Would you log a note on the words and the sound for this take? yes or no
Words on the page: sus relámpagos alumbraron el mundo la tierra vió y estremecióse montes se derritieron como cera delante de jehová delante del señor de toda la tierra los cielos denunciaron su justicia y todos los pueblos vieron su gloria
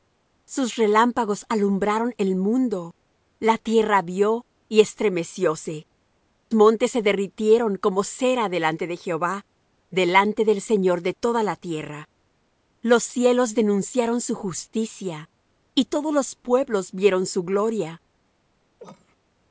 yes